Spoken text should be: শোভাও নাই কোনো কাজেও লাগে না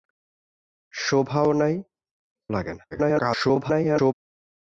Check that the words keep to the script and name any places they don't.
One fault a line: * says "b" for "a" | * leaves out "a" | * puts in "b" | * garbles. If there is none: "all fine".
* leaves out "কোনো কাজেও"
* garbles